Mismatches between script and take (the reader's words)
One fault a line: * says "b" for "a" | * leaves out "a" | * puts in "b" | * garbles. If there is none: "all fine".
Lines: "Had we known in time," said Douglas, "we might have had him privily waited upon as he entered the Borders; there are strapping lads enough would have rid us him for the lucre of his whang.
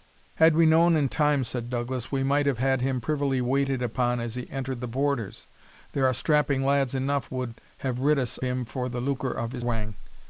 all fine